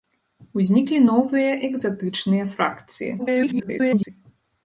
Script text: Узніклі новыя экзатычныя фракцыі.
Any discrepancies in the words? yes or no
yes